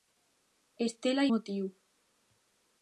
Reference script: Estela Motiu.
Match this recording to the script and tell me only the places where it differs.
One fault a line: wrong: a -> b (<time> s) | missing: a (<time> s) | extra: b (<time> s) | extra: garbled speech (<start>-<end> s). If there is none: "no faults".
no faults